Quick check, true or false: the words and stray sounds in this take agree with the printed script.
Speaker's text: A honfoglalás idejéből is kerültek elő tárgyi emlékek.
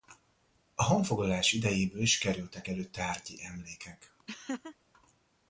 false